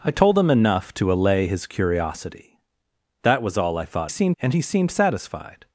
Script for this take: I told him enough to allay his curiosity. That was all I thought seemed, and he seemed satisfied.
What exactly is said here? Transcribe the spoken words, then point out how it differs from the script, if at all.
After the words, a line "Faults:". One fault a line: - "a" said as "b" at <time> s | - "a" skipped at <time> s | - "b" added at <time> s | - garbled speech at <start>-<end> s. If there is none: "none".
I told him enough to allay his curiosity. That was all I thought seemed, and he seemed satisfied.
Faults:
none